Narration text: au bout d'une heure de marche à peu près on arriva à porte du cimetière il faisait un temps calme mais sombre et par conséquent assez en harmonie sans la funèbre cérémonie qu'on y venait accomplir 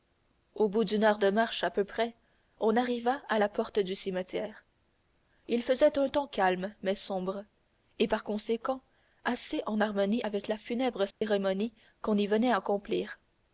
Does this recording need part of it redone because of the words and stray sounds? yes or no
yes